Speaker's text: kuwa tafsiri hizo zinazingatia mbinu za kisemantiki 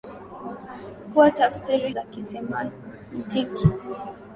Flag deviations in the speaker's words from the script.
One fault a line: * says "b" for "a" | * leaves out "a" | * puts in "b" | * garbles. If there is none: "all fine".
* leaves out "hizo zinazingatia mbinu"